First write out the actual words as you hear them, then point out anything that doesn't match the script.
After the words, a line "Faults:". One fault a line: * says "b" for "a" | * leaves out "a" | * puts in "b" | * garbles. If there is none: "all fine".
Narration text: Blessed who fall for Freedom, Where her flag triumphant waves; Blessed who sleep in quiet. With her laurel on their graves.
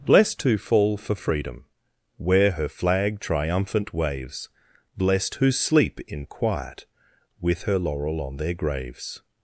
Blessed who fall for Freedom, Where her flag triumphant waves; Blessed who sleep in quiet. With her laurel on their graves.
Faults:
all fine